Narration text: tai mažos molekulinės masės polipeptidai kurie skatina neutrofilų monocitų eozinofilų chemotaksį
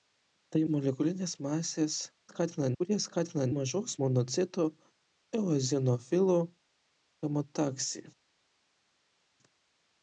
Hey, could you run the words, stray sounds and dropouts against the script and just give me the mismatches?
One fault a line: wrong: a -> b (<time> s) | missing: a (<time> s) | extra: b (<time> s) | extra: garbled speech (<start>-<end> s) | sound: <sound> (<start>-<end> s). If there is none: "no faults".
missing: mažos (0.6 s)
wrong: polipeptidai -> skatina (2.3 s)
wrong: neutrofilų -> mažos (3.5 s)